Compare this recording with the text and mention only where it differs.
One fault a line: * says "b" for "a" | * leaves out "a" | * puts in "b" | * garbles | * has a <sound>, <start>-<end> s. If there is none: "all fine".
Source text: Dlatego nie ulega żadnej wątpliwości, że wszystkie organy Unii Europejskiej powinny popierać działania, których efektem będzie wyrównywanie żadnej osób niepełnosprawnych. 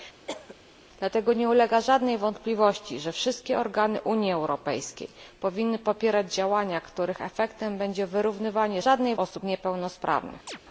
* has a cough, 0.3-0.6 s
* has a chirp, 10.5-10.6 s